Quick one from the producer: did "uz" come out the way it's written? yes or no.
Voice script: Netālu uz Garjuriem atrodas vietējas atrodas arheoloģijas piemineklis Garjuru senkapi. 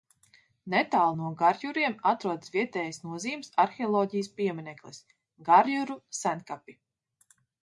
no